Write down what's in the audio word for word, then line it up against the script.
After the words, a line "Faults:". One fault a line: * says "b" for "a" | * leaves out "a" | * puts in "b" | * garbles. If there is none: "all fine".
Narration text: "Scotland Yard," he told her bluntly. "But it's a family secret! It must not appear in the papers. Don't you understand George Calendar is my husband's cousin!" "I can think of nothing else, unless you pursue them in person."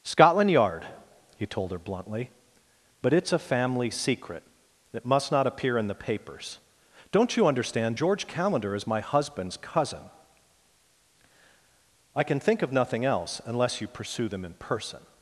"Scotland Yard," he told her bluntly. "But it's a family secret! It must not appear in the papers. Don't you understand George Calendar is my husband's cousin!" "I can think of nothing else, unless you pursue them in person."
Faults:
all fine